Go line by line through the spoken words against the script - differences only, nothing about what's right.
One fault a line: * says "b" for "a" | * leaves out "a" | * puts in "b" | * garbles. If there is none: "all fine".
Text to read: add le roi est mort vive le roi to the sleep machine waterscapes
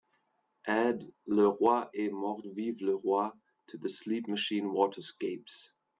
all fine